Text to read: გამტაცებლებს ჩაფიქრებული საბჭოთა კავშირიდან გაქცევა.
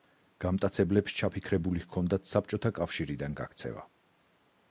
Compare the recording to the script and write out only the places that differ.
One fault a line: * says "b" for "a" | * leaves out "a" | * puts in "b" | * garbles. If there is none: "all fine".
* puts in "ჰქონდათ"